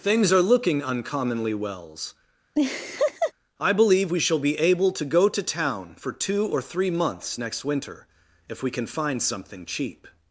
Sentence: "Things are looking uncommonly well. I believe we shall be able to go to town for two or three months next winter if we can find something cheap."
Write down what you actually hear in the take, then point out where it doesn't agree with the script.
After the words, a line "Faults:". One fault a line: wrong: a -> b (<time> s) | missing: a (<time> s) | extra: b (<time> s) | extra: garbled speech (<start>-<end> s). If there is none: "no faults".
"Things are looking uncommonly wells. I believe we shall be able to go to town for two or three months next winter if we can find something cheap."
Faults:
wrong: well -> wells (1.5 s)